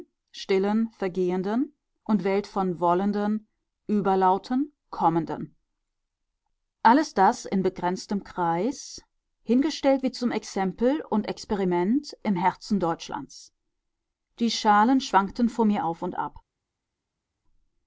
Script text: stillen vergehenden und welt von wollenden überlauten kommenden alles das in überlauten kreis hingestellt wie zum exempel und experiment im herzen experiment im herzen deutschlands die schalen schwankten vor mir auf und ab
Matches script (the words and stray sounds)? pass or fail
fail